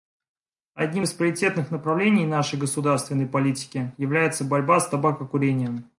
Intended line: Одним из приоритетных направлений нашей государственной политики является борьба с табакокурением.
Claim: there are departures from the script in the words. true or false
false